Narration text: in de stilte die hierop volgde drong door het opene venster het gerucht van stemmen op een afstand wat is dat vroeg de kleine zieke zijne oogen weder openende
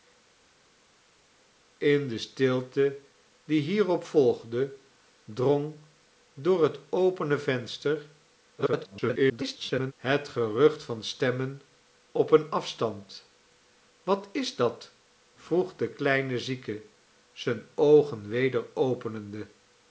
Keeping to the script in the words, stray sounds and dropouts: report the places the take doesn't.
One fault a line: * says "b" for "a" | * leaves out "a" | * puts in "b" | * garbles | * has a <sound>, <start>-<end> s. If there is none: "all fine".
* garbles